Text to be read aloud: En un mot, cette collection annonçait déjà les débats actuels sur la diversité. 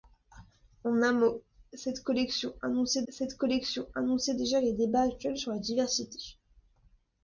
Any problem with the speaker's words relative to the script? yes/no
yes